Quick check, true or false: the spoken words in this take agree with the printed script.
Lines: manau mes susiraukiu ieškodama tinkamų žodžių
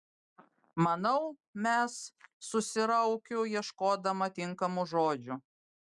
true